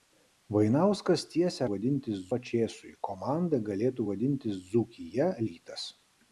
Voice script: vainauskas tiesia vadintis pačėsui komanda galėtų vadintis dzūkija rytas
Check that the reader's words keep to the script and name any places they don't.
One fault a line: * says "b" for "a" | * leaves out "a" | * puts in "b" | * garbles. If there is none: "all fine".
all fine